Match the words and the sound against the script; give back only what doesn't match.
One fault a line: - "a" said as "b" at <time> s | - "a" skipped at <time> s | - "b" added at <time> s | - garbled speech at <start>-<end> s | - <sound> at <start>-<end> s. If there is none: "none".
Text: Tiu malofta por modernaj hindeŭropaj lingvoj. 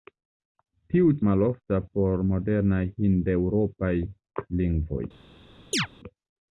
- chirp at 5.7-5.9 s